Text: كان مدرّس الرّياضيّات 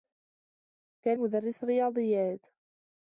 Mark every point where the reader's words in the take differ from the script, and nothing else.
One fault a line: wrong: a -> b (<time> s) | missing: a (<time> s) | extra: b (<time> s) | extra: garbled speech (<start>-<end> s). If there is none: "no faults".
no faults